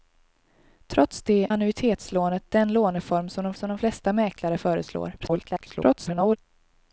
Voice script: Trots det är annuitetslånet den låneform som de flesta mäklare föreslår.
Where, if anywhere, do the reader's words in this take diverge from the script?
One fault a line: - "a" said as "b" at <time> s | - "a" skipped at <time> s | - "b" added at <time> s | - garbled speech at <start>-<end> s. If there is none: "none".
- "är" skipped at 1.5 s
- "som de" added at 3.5 s
- garbled speech at 5.2-6.4 s